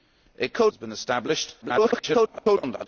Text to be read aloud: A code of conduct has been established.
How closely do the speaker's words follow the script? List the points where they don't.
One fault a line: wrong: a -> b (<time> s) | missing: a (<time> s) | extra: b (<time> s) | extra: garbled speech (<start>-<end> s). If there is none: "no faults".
missing: of conduct (0.7 s)
extra: garbled speech (1.6-2.9 s)